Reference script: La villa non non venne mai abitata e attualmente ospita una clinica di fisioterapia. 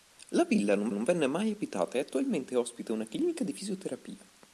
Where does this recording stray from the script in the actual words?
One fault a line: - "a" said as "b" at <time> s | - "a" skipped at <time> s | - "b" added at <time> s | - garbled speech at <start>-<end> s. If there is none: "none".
none